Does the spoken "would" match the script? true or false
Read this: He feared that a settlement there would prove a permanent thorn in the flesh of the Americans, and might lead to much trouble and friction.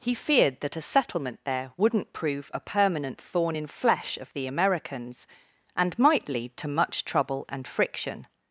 false